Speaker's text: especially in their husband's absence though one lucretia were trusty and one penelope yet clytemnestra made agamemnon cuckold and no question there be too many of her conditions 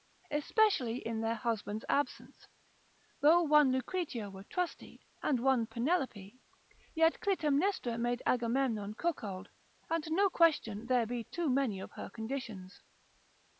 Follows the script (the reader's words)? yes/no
yes